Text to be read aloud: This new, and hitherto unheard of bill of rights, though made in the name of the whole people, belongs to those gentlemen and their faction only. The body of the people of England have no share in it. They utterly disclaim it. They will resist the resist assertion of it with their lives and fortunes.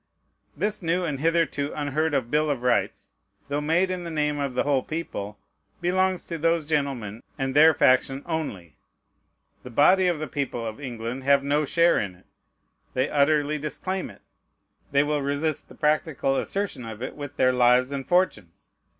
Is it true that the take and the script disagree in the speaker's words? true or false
true